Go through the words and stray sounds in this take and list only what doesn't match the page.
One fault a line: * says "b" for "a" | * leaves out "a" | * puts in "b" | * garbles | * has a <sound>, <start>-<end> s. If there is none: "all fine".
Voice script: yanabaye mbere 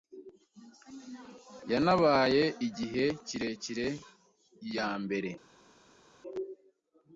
* puts in "igihe kirekire iya"